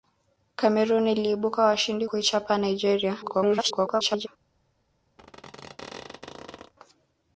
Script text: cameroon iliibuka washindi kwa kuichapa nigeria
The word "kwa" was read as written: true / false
false